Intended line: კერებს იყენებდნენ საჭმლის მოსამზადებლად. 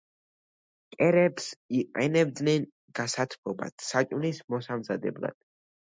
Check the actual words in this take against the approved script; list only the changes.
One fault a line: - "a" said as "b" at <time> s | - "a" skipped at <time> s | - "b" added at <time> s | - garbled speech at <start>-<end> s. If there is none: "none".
- "გასათბობად" added at 3.0 s